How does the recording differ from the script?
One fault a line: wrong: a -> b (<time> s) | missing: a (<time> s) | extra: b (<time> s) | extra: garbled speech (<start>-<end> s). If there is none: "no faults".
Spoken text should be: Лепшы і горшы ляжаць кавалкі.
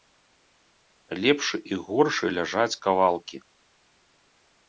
no faults